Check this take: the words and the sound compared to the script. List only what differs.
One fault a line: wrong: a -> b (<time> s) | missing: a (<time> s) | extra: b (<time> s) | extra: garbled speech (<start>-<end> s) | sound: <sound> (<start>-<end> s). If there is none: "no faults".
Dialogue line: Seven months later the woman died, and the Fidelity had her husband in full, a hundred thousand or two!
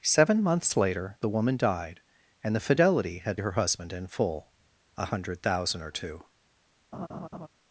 sound: laugh (6.9-7.5 s)